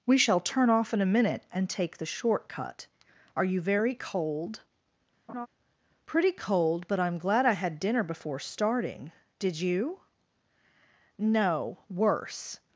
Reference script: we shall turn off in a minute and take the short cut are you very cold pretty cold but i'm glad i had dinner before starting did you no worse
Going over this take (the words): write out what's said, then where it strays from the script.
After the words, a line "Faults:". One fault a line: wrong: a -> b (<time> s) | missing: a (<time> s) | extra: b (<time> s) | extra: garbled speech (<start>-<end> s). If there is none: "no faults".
we shall turn off in a minute and take the short cut are you very cold pretty cold but i'm glad i had dinner before starting did you no worse
Faults:
no faults